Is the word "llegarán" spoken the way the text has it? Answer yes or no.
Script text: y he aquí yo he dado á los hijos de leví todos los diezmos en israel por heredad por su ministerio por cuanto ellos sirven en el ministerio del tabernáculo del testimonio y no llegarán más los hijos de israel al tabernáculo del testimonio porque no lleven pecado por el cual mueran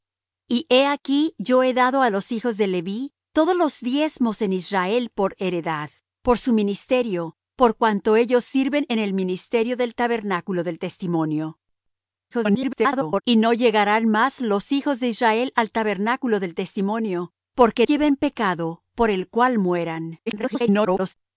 yes